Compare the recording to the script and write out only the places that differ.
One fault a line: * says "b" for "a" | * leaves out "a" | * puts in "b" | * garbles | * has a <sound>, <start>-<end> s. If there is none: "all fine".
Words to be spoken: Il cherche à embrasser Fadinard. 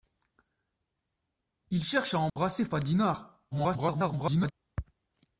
* has a dropout, 2.3-2.4 s
* garbles